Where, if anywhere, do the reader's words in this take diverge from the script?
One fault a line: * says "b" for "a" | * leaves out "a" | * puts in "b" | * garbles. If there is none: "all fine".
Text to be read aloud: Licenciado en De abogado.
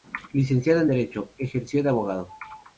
* puts in "Derecho ejerció"